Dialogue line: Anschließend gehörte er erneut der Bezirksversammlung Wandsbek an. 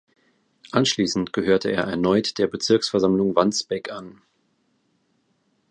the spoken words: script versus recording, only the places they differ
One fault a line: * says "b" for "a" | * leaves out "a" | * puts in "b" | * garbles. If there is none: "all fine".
all fine